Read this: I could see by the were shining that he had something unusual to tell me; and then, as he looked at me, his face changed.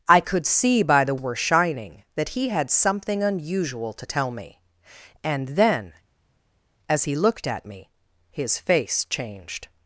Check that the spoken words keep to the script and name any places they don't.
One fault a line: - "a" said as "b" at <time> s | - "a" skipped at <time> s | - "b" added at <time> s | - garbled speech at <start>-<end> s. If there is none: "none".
none